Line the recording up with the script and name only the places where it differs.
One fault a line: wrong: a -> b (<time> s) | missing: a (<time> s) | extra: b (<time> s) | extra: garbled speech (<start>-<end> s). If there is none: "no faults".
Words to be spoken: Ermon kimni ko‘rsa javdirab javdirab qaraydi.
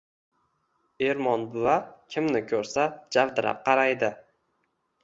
extra: buva (1.6 s)
missing: javdirab (3.6 s)